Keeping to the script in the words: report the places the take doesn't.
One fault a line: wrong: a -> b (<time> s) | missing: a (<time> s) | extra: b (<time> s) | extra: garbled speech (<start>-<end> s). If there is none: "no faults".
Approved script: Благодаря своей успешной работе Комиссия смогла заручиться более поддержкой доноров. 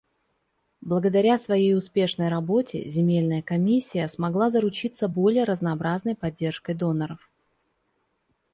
extra: Земельная (2.9 s)
extra: разнообразной (5.4 s)